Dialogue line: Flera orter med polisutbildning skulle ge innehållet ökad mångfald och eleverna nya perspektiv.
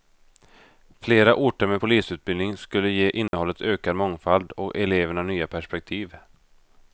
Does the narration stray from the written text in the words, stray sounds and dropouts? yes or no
yes